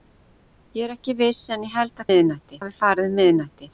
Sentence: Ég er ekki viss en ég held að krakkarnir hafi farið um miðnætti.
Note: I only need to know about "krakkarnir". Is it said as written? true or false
false